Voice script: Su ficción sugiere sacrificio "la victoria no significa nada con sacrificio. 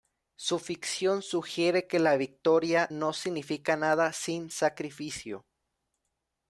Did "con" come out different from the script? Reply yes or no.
yes